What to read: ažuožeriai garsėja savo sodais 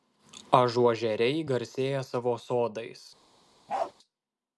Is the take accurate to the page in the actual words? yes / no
yes